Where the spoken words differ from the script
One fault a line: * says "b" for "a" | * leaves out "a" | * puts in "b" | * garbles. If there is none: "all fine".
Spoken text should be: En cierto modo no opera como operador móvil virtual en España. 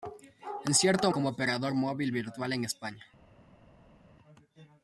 * leaves out "modo no opera"